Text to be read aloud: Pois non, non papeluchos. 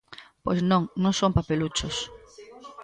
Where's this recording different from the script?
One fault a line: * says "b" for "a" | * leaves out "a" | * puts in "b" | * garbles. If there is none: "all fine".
* puts in "son"